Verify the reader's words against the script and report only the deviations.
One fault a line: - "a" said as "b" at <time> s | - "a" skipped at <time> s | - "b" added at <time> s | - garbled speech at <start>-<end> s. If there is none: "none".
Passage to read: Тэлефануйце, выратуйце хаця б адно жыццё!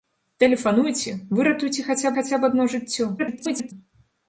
- "хаця" added at 2.2 s
- garbled speech at 3.2-3.7 s